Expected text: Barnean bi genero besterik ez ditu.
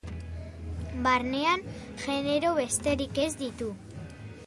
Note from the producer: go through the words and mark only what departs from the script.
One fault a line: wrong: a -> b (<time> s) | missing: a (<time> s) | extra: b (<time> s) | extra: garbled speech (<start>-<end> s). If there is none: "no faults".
missing: bi (1.6 s)